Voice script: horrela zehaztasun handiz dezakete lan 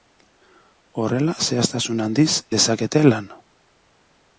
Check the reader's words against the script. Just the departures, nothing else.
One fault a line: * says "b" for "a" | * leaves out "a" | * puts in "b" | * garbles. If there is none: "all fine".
all fine